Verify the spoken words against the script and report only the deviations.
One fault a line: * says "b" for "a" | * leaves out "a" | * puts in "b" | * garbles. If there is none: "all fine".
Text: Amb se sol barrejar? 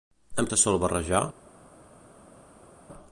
all fine